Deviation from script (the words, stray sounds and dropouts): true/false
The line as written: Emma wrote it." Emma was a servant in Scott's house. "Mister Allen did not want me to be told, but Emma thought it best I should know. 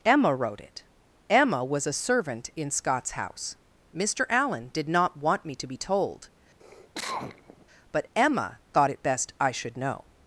true